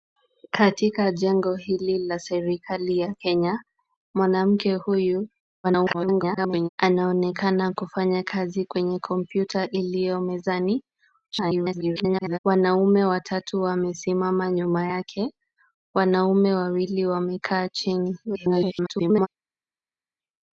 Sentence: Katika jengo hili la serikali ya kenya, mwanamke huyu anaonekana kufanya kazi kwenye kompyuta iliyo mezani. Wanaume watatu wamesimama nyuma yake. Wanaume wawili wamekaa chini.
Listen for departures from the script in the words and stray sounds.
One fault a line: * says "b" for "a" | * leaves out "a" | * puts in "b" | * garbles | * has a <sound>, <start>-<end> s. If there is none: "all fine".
* garbles
* garbles
* garbles